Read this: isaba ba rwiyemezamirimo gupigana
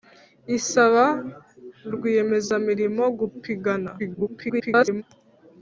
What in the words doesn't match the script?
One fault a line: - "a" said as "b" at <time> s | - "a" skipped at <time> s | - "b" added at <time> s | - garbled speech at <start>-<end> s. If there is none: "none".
- "ba" skipped at 1.1 s
- garbled speech at 4.0-5.0 s